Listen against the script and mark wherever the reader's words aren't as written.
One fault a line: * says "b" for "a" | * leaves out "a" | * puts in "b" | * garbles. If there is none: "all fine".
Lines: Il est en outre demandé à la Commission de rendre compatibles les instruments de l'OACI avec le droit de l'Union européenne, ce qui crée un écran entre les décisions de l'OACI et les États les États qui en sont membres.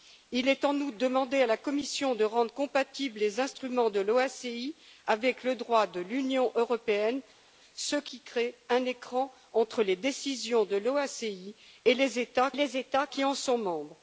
all fine